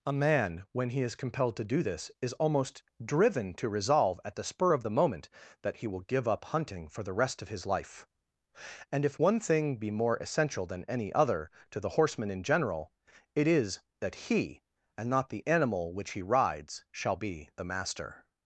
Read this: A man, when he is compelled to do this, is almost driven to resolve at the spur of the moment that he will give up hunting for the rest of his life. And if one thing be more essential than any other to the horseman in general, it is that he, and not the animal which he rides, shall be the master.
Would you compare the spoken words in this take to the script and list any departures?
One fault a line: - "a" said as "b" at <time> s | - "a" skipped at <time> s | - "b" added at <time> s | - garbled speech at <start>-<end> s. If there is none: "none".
none